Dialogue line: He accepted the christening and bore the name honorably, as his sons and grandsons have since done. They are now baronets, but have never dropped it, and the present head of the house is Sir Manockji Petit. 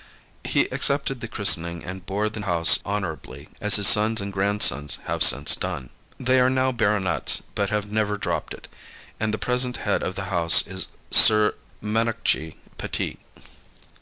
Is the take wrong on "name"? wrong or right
wrong